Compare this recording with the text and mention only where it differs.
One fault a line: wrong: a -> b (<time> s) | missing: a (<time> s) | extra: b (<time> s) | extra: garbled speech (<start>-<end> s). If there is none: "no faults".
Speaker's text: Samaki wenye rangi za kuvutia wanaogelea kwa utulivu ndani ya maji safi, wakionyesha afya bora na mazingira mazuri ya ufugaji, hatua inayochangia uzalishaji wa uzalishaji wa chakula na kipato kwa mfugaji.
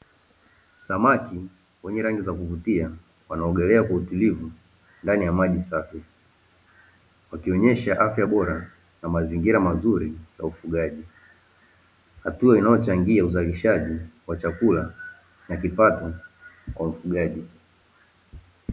missing: uzalishaji wa (14.4 s)